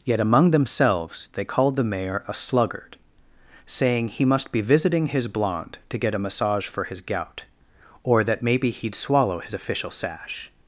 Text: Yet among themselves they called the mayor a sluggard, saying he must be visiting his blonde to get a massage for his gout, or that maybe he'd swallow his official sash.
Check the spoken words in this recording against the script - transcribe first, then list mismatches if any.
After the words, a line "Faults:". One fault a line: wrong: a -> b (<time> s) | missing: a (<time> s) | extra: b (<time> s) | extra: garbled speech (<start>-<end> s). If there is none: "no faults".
Yet among themselves they called the mayor a sluggard, saying he must be visiting his blonde to get a massage for his gout, or that maybe he'd swallow his official sash.
Faults:
no faults